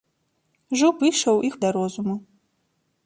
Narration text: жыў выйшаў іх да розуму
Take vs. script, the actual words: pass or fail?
pass